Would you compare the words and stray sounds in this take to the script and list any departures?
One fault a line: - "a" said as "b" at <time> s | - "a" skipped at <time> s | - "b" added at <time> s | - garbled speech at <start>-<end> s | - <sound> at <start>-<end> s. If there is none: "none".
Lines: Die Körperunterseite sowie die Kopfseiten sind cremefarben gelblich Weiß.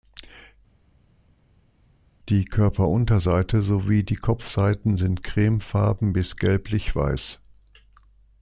- "bis" added at 6.1 s